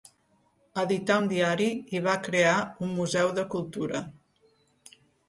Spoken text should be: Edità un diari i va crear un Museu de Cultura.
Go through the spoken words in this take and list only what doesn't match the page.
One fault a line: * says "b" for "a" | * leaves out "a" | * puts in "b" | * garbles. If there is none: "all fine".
all fine